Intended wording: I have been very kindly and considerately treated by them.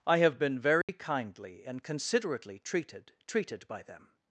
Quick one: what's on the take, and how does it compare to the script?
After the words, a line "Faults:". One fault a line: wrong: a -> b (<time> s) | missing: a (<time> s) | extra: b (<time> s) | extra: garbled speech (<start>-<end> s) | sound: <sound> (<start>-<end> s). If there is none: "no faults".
I have been very kindly and considerately treated treated by them.
Faults:
sound: dropout (0.8-0.9 s)
extra: treated (3.3 s)